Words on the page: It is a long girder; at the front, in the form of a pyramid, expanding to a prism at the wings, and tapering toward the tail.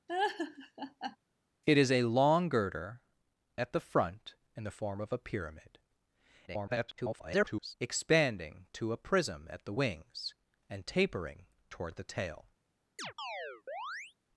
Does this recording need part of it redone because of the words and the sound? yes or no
yes